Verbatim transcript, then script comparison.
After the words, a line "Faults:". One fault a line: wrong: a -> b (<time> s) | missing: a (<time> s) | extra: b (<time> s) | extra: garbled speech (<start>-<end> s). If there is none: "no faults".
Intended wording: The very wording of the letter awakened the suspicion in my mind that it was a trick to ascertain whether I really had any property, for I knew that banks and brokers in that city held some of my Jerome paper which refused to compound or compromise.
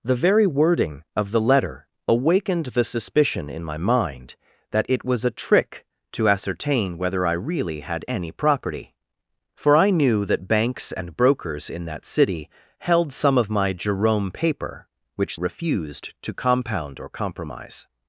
The very wording of the letter awakened the suspicion in my mind that it was a trick to ascertain whether I really had any property, for I knew that banks and brokers in that city held some of my Jerome paper which refused to compound or compromise.
Faults:
no faults